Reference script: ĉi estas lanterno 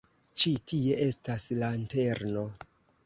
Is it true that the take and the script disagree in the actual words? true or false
true